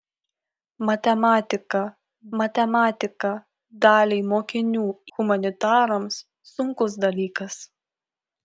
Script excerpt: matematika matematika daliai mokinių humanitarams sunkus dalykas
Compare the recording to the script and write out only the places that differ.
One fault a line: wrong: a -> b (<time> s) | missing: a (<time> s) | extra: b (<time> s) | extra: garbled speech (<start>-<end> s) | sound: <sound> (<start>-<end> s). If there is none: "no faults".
no faults